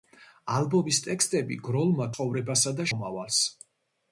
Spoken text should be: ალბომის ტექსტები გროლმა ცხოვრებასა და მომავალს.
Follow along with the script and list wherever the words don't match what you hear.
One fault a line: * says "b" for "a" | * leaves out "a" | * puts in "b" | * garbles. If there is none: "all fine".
all fine